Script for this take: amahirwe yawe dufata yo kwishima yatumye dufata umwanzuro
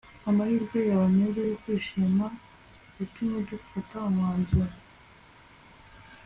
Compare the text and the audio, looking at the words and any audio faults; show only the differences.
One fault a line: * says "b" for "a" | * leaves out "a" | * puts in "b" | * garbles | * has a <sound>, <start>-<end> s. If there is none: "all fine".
* says "meza" for "dufata"